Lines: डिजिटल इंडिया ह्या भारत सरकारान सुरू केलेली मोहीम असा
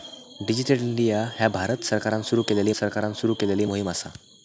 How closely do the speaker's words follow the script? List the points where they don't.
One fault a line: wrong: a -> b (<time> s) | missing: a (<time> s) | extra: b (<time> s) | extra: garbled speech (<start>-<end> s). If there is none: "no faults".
extra: सरकारान सुरू केलेली (2.7 s)